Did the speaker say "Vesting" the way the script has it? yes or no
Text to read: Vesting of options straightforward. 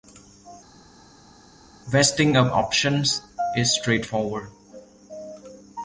yes